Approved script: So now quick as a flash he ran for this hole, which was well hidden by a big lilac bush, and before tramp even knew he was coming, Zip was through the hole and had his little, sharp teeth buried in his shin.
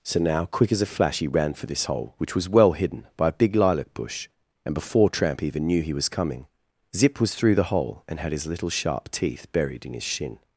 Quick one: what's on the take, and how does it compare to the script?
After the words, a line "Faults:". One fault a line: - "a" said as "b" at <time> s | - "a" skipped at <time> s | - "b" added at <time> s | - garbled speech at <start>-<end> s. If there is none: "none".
So now quick as a flash he ran for this hole, which was well hidden by a big lilac bush, and before tramp even knew he was coming, Zip was through the hole and had his little, sharp teeth buried in his shin.
Faults:
none